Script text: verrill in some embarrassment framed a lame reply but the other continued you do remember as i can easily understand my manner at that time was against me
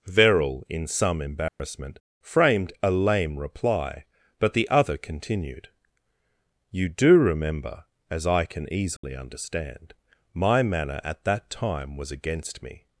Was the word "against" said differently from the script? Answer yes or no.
no